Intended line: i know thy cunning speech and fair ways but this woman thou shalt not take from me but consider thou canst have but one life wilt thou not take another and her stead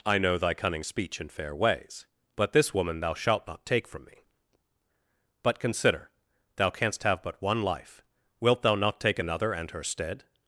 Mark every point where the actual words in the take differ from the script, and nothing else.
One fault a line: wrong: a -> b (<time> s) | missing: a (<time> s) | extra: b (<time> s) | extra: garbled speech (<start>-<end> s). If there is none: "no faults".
no faults